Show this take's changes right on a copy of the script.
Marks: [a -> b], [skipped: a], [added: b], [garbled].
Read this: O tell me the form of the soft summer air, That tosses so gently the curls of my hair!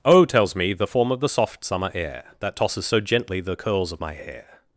O [tell -> tells] me the form of the soft summer air, That tosses so gently the curls of my hair!